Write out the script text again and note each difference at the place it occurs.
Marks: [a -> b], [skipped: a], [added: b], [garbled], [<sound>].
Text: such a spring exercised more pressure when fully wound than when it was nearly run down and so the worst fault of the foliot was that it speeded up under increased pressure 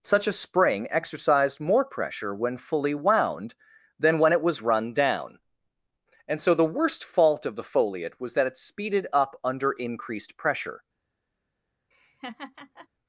such a spring exercised more pressure when fully wound than when it was [skipped: nearly] run down and so the worst fault of the foliot was that it speeded up under increased pressure [laugh]